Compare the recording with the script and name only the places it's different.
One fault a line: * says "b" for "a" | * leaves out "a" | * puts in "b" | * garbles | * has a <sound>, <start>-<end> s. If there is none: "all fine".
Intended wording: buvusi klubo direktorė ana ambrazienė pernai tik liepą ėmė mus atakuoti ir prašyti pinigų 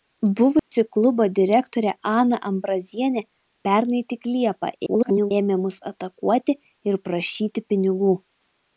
* has a dropout, 0.6-0.7 s
* garbles